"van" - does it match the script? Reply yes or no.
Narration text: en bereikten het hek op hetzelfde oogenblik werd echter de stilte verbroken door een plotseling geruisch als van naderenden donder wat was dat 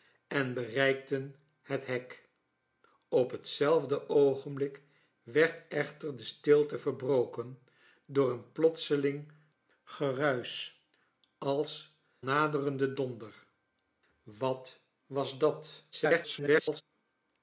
no